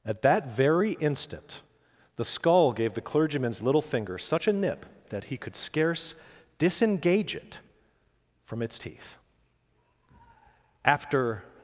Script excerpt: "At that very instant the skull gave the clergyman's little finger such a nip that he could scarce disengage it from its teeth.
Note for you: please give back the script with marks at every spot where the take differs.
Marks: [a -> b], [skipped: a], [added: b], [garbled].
"At that very instant the skull gave the clergyman's little finger such a nip that he could scarce disengage it from its teeth. [added: After]